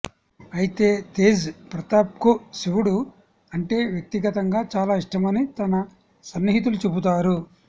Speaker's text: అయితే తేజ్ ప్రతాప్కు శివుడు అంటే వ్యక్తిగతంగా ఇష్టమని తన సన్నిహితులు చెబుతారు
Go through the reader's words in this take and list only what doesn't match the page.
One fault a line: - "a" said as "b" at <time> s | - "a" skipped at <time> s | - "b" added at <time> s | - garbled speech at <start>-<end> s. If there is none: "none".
- "చాలా" added at 4.8 s